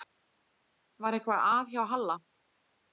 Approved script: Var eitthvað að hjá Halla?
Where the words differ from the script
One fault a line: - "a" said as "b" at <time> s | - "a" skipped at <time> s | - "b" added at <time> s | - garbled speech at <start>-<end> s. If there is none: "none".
none